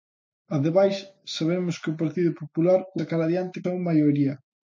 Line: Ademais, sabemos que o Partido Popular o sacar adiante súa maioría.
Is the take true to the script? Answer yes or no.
yes